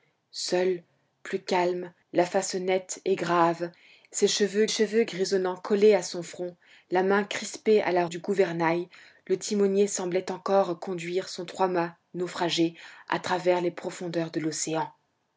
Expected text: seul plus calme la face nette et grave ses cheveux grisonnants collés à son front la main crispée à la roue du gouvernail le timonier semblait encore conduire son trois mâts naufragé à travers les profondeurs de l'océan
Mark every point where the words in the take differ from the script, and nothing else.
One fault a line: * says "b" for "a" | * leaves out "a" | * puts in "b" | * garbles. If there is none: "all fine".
* puts in "cheveux"
* leaves out "roue"